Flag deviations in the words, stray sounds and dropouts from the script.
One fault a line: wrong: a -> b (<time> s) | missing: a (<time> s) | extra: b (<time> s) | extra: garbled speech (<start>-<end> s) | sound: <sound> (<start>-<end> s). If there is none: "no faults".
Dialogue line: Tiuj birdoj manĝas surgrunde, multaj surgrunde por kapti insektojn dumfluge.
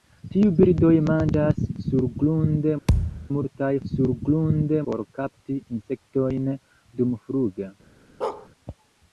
sound: thud (2.9-3.3 s)
sound: bark (8.2-8.5 s)